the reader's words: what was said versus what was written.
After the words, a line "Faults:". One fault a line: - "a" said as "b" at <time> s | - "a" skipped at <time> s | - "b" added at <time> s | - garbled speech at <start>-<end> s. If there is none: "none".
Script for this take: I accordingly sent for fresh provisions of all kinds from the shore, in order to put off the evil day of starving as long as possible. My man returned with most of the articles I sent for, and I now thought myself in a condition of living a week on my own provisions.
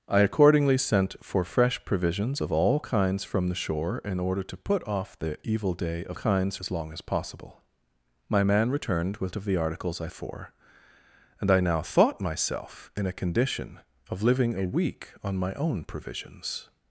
I accordingly sent for fresh provisions of all kinds from the shore, in order to put off the evil day of kinds as long as possible. My man returned with of the articles I for, and I now thought myself in a condition of living a week on my own provisions.
Faults:
- "starving" said as "kinds" at 6.1 s
- "most" skipped at 9.4 s
- "sent" skipped at 10.1 s